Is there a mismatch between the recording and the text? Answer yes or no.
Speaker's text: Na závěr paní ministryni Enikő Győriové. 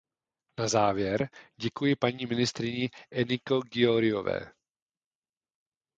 yes